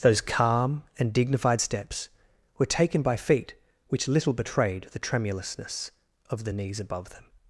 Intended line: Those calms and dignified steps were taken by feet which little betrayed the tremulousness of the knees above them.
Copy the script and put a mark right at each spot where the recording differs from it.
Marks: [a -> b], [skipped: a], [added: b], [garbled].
Those [calms -> calm] and dignified steps were taken by feet which little betrayed the tremulousness of the knees above them.